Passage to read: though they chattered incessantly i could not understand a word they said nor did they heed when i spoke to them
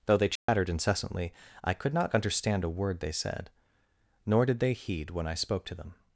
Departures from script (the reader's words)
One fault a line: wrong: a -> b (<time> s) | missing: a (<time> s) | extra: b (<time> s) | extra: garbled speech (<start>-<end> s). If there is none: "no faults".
no faults